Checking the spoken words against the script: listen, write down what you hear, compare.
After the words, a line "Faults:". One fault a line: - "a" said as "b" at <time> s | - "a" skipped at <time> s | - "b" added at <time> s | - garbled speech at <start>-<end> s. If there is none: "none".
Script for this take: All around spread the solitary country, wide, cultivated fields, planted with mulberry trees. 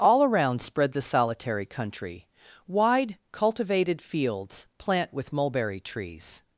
All around spread the solitary country, wide, cultivated fields, plant with mulberry trees.
Faults:
- "planted" said as "plant" at 4.8 s